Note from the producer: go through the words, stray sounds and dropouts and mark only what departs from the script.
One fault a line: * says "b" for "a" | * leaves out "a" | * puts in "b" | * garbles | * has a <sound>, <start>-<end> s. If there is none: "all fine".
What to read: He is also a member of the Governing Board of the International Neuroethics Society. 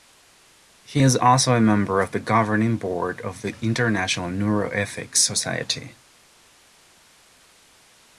all fine